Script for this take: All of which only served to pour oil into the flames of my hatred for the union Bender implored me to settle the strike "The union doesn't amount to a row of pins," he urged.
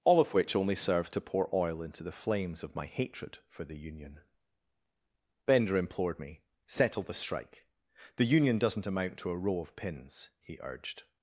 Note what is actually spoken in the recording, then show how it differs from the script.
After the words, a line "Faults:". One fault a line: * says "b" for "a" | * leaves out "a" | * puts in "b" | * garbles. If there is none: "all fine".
All of which only served to pour oil into the flames of my hatred for the union Bender implored me settle the strike "The union doesn't amount to a row of pins," he urged.
Faults:
* leaves out "to"